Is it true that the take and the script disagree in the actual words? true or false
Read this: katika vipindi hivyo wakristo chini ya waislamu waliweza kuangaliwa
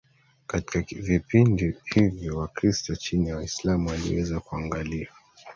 false